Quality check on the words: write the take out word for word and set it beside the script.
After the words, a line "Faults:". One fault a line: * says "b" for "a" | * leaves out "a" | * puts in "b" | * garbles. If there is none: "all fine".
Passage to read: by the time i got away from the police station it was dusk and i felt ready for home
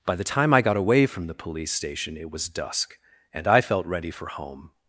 by the time i got away from the police station it was dusk and i felt ready for home
Faults:
all fine